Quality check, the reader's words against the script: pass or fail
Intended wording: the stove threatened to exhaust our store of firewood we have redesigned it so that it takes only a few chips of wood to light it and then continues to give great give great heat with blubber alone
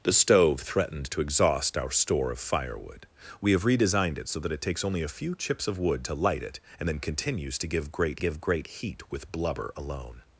pass